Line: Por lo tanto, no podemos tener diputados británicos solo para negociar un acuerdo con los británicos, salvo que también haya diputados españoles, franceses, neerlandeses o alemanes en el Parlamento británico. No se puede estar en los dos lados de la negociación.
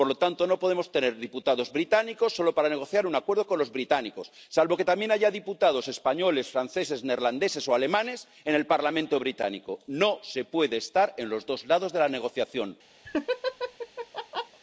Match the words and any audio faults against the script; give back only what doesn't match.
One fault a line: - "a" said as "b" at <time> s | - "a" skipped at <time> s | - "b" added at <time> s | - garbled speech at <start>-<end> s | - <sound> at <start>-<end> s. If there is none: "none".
- laugh at 13.0-14.6 s